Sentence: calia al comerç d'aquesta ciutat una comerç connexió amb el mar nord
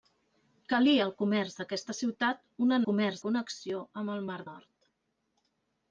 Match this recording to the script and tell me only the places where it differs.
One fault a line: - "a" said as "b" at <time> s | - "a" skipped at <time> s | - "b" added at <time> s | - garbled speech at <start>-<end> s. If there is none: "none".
none